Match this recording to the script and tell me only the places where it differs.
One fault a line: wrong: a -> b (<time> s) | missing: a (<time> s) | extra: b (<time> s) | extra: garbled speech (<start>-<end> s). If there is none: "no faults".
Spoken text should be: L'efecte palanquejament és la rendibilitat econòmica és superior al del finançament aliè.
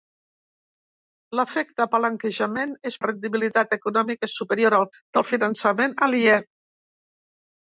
no faults